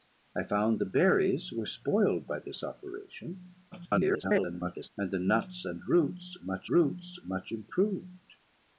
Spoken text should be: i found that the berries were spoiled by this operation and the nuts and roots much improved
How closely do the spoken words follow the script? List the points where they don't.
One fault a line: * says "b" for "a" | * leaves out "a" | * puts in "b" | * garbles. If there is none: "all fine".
* leaves out "that"
* garbles
* puts in "roots much"